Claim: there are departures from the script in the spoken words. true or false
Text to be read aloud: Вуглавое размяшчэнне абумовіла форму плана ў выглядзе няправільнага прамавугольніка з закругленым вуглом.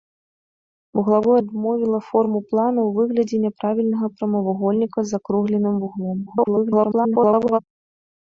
true